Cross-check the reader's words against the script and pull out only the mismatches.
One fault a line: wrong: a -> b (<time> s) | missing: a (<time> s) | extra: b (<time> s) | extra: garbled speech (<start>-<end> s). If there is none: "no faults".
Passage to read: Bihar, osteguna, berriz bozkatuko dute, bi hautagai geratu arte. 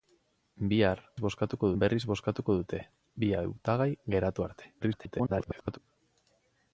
wrong: osteguna -> bozkatuko (1.2 s)
extra: garbled speech (4.8-5.8 s)